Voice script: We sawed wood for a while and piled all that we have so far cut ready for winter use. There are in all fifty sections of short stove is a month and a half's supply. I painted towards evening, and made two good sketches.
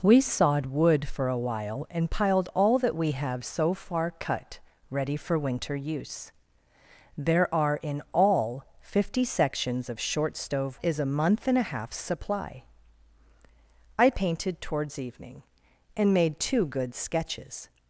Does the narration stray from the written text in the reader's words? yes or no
no